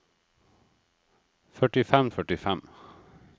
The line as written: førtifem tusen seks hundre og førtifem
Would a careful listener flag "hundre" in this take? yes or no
yes